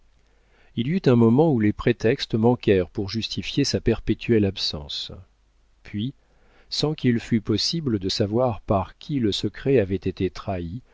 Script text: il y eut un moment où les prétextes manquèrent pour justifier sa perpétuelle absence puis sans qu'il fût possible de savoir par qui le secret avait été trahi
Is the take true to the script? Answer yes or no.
yes